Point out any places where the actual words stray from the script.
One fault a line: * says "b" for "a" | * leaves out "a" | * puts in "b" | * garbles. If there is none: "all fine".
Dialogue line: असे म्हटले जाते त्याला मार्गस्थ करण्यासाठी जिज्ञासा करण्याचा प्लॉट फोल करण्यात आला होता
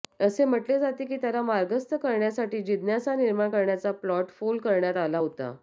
* puts in "की"
* puts in "निर्माण"